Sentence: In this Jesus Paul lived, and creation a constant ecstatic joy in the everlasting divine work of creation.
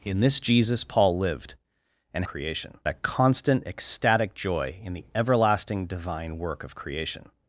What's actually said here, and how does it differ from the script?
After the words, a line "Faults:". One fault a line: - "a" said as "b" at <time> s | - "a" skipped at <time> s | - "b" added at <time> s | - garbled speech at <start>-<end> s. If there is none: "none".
In this Jesus Paul lived, and creation a constant ecstatic joy in the everlasting divine work of creation.
Faults:
none